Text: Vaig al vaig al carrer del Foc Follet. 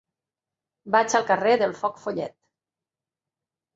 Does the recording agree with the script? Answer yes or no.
no